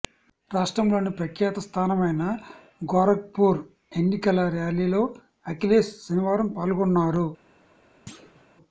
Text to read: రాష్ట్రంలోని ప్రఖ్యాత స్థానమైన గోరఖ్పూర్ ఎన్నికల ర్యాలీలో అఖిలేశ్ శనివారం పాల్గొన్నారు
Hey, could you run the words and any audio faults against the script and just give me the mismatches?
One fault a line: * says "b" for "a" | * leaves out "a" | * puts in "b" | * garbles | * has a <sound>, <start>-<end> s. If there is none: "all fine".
* has a thud, 8.1-8.5 s